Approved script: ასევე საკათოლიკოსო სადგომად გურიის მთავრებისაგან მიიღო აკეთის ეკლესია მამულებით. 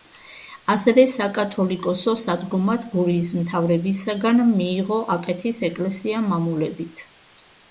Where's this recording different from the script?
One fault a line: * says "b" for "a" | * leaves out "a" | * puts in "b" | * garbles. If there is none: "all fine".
all fine